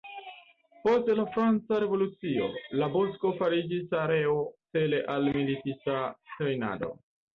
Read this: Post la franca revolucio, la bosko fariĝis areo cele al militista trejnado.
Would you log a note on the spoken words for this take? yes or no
no